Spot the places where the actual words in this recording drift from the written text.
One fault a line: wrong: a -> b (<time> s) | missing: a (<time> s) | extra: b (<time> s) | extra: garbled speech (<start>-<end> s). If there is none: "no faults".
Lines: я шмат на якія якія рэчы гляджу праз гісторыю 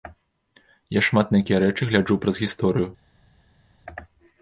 missing: якія (1.6 s)